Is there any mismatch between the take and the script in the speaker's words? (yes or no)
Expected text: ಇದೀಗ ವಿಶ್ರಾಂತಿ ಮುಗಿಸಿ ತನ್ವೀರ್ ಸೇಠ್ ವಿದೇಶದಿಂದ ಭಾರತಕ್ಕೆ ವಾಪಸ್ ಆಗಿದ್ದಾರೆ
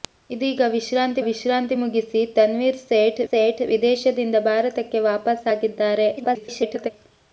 yes